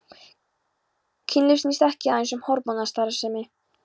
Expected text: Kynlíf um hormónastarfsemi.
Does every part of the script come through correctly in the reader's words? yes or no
no